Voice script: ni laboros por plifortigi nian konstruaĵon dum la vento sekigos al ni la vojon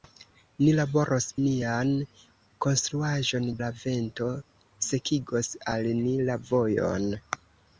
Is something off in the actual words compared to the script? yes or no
yes